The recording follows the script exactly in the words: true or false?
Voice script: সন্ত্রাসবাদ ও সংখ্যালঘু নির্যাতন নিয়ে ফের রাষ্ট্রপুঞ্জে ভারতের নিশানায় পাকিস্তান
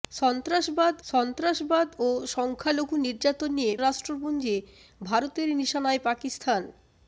false